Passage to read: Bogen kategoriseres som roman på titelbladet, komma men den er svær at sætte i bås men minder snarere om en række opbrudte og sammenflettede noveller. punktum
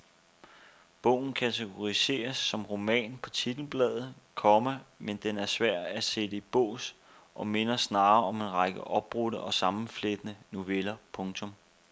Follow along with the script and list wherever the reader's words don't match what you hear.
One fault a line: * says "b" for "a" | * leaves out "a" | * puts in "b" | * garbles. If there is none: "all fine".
* says "og" for "men"